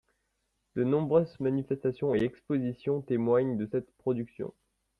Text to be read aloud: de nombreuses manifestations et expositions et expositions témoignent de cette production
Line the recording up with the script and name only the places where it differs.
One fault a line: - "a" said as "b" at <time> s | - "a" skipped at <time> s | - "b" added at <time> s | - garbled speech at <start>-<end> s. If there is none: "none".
- "et expositions" skipped at 3.0 s